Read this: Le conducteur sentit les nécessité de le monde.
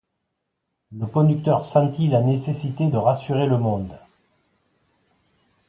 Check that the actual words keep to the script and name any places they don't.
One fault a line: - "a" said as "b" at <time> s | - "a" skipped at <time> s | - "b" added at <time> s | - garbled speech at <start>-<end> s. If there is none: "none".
- "les" said as "la" at 2.1 s
- "rassurer" added at 2.9 s